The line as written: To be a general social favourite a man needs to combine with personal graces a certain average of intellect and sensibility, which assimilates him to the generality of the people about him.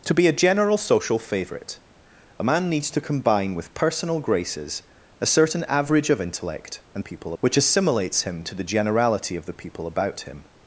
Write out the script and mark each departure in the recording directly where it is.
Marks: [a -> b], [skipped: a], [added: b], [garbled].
To be a general social favourite a man needs to combine with personal graces a certain average of intellect and [sensibility, -> people] which assimilates him to the generality of the people about him.